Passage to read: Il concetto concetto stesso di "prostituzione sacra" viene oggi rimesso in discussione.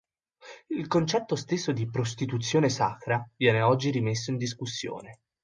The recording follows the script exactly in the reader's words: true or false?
false